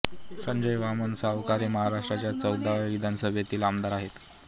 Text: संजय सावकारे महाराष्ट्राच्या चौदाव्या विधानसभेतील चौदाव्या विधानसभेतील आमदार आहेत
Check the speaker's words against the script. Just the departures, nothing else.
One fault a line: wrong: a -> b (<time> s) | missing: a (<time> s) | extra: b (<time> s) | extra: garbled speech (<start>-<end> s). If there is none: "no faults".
extra: वामन (0.8 s)
missing: चौदाव्या विधानसभेतील (3.6 s)